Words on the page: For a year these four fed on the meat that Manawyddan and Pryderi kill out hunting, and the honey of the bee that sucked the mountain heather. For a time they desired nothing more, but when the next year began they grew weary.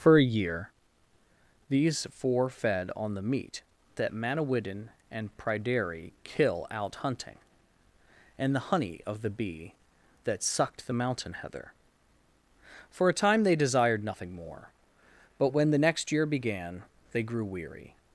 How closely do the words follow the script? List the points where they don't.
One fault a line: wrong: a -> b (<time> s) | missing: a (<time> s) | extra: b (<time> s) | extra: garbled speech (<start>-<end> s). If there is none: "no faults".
no faults